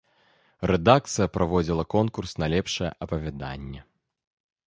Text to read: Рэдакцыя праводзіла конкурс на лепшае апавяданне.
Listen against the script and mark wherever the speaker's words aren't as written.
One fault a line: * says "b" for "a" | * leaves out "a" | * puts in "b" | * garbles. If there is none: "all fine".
all fine